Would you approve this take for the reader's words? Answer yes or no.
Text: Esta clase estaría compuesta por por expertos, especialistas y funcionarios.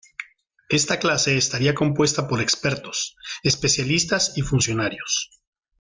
no